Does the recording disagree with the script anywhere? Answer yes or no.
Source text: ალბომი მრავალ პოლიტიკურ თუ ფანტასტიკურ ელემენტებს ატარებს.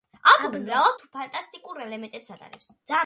yes